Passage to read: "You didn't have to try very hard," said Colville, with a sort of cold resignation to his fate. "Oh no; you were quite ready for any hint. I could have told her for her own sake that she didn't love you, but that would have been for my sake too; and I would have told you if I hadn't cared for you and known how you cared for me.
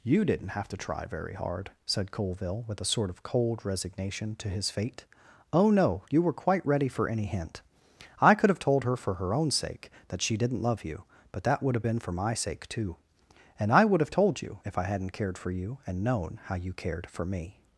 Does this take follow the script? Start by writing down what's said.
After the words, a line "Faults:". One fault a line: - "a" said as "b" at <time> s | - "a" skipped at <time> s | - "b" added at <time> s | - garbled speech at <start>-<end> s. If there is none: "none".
"You didn't have to try very hard," said Colville, with a sort of cold resignation to his fate. "Oh no; you were quite ready for any hint. I could have told her for her own sake that she didn't love you, but that would have been for my sake too; and I would have told you if I hadn't cared for you and known how you cared for me.
Faults:
none